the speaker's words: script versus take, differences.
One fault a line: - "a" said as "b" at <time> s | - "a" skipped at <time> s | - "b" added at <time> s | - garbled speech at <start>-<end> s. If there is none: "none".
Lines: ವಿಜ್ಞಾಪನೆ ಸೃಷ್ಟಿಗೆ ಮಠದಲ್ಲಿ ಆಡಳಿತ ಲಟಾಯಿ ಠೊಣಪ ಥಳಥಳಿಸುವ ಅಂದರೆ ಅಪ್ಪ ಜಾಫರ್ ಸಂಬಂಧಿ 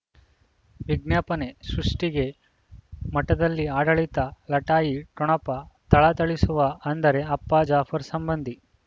none